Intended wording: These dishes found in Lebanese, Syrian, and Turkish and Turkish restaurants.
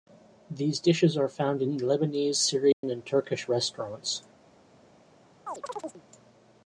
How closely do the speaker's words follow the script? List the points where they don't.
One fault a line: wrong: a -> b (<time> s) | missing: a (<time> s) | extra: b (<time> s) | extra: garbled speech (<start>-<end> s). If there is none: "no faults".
extra: are (1.1 s)
missing: and Turkish (3.5 s)